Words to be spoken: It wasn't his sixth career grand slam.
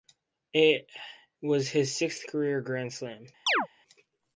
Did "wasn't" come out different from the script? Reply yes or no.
yes